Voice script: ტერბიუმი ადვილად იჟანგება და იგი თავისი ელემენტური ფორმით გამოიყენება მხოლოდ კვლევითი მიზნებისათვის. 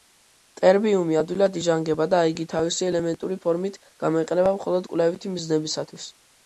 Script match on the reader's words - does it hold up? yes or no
yes